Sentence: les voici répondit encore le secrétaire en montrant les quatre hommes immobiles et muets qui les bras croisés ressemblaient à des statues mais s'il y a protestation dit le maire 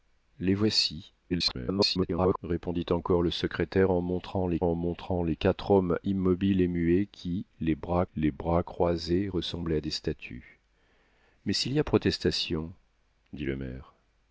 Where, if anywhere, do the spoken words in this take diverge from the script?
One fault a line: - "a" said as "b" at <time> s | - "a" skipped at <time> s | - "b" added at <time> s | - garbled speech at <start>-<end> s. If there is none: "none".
- garbled speech at 1.3-2.4 s
- "en montrant les" added at 4.6 s
- "les bras" added at 8.2 s